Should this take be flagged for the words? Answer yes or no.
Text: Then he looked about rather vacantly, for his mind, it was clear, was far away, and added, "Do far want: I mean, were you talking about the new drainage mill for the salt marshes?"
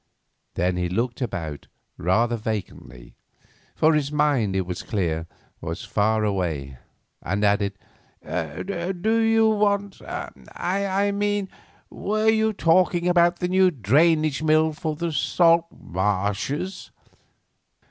yes